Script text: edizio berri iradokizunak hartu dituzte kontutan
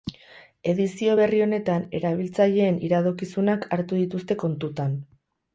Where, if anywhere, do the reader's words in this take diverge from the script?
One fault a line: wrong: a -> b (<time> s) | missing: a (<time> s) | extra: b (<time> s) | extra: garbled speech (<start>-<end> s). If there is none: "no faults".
extra: honetan erabiltzaileen (1.5 s)